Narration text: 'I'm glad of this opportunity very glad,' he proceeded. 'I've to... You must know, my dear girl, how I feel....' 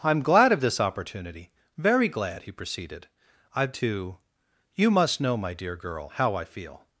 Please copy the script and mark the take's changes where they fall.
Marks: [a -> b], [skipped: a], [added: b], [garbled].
'I'm glad of this opportunity very glad,' he proceeded. 'I've to... You must know, my dear girl, how I feel....'